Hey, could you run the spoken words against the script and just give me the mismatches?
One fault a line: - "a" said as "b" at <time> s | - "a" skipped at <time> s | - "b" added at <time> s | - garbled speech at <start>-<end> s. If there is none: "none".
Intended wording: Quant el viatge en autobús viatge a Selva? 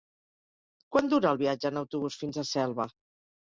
- "dura" added at 1.1 s
- "viatge" said as "fins" at 2.2 s